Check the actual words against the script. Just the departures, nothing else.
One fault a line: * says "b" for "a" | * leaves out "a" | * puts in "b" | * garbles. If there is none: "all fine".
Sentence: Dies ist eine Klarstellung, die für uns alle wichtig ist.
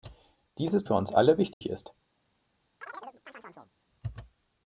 * leaves out "eine Klarstellung die"